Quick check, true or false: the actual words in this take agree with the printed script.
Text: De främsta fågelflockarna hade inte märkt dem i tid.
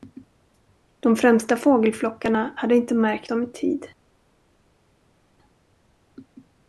true